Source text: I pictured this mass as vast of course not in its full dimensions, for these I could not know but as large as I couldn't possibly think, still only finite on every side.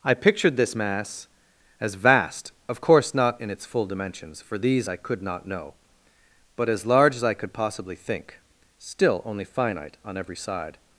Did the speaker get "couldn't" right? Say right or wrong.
wrong